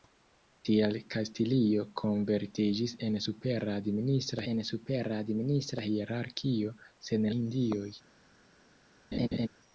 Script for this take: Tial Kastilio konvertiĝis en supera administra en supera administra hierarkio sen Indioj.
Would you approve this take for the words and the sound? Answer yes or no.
no